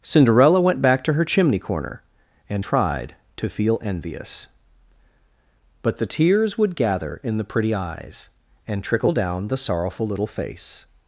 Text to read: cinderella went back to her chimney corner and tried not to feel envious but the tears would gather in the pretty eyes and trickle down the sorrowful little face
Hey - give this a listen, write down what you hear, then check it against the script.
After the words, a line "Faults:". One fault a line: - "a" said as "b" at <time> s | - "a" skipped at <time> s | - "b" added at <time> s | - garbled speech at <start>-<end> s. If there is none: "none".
cinderella went back to her chimney corner and tried to feel envious but the tears would gather in the pretty eyes and trickle down the sorrowful little face
Faults:
- "not" skipped at 3.1 s